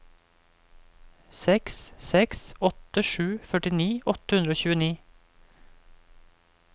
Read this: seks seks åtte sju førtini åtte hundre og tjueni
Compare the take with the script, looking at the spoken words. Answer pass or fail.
pass